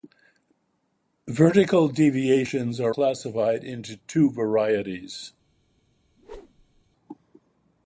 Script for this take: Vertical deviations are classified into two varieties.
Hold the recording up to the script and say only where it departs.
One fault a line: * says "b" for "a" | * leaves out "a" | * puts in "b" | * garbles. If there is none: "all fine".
all fine